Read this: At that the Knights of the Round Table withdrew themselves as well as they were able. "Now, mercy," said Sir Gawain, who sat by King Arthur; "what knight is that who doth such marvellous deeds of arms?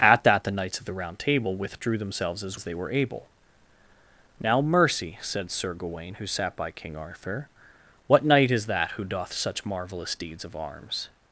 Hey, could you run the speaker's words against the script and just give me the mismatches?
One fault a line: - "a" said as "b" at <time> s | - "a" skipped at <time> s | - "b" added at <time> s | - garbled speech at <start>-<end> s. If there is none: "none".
- "well" skipped at 2.6 s